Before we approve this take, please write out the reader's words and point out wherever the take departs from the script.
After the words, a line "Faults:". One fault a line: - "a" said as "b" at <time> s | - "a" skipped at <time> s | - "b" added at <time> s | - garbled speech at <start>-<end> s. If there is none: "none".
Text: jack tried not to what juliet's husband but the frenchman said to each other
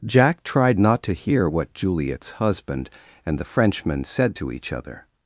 jack tried not to hear what juliet's husband and the frenchman said to each other
Faults:
- "hear" added at 1.1 s
- "but" said as "and" at 3.2 s